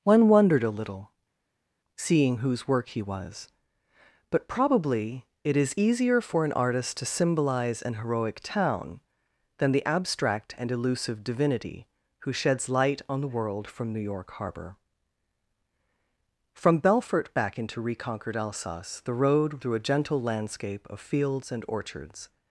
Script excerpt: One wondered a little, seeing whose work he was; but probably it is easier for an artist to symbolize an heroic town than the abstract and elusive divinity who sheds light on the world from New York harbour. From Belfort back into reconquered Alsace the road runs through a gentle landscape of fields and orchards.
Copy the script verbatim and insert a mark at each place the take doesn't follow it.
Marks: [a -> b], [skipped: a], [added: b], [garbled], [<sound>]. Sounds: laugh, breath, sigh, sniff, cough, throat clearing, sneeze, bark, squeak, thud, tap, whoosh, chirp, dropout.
One wondered a little, seeing whose work he was; but probably it is easier for an artist to symbolize an heroic town than the abstract and elusive divinity who sheds light on the world from New York harbour. From Belfort back into reconquered Alsace the road [skipped: runs] through a gentle landscape of fields and orchards.